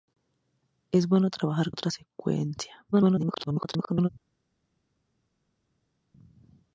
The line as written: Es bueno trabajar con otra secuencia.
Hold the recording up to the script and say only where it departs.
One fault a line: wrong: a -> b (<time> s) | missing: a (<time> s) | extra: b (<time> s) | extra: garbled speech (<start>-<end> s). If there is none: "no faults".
missing: con (1.7 s)
extra: garbled speech (2.9-4.1 s)